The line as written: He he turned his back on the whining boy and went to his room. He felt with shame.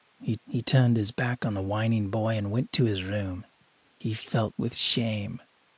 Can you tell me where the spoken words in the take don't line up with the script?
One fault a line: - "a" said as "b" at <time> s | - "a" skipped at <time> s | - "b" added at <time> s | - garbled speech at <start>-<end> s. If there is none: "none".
none